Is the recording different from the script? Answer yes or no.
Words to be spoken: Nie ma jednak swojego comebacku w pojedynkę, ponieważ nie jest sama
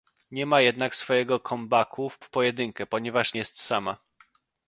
yes